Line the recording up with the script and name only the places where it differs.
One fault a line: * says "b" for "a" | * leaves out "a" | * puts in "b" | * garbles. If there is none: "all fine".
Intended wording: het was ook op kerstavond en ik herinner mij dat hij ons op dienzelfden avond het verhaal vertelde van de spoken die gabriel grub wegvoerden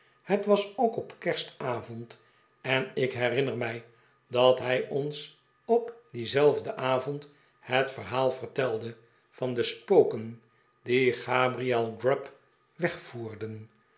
all fine